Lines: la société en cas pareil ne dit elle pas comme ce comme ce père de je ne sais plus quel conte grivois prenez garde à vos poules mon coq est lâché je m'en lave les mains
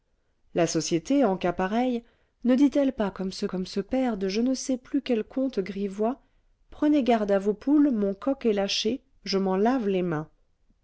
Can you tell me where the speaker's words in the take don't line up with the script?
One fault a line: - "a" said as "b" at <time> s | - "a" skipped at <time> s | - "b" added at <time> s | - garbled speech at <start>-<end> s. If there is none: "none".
none